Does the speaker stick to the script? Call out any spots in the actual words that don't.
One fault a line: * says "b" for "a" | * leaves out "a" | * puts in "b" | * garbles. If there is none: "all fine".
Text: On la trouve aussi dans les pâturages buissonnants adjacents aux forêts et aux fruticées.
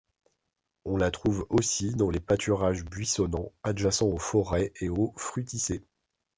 all fine